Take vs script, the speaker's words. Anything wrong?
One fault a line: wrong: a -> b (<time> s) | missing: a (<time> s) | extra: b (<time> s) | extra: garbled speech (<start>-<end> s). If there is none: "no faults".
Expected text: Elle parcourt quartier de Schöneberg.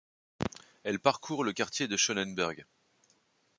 extra: le (1.4 s)